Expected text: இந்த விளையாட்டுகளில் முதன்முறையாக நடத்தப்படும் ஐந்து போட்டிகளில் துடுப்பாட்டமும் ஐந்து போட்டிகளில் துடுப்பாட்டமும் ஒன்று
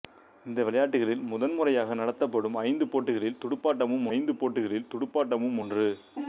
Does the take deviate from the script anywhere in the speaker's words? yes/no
no